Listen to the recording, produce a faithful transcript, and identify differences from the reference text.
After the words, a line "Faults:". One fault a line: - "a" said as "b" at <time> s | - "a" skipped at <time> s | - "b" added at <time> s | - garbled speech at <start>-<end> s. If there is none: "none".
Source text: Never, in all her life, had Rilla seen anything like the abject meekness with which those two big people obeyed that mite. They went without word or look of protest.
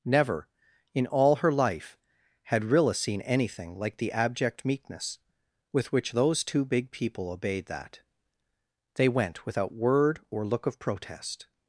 Never, in all her life, had Rilla seen anything like the abject meekness with which those two big people obeyed that. They went without word or look of protest.
Faults:
- "mite" skipped at 8.0 s